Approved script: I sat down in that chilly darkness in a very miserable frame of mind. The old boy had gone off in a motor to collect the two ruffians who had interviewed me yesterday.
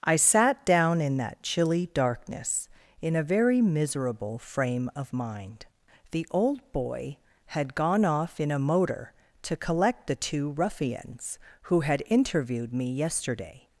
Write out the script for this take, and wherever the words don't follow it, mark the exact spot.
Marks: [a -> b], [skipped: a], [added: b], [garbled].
I sat down in that chilly darkness in a very miserable frame of mind. The old boy had gone off in a motor to collect the two ruffians who had interviewed me yesterday.